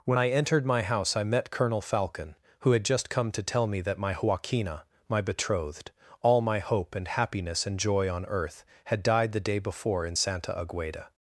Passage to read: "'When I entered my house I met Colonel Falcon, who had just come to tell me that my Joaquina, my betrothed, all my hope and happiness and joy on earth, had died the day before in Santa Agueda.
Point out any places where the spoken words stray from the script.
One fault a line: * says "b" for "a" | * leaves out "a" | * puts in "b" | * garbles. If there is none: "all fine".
all fine